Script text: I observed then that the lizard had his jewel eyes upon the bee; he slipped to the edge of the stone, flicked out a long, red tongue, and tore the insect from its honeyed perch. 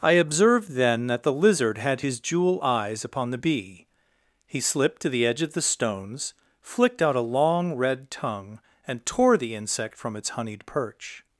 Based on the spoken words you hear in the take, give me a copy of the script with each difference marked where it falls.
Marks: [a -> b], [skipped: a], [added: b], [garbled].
I observed then that the lizard had his jewel eyes upon the bee; he slipped to the edge of the [stone, -> stones] flicked out a long, red tongue, and tore the insect from its honeyed perch.